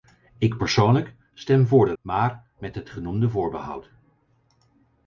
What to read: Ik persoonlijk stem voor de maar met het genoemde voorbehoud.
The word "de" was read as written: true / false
true